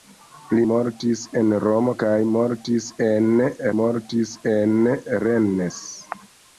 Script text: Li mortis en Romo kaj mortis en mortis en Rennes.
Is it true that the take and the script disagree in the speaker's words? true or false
false